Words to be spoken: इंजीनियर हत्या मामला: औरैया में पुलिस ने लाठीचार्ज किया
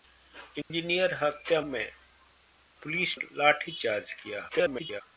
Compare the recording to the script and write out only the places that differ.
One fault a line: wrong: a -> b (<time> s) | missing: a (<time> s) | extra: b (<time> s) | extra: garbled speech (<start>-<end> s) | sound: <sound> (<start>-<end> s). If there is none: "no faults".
sound: dropout (0.6-0.7 s)
missing: मामला औरैया (1.6 s)
missing: ने (3.2 s)
extra: garbled speech (4.5-5.0 s)